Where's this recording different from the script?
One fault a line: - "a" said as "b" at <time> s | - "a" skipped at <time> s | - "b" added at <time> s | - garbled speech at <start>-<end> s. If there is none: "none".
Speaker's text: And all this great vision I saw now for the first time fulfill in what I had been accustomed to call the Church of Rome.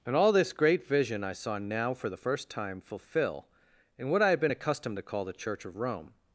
none